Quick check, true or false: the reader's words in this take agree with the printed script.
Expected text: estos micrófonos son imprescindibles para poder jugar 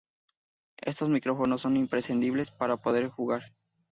true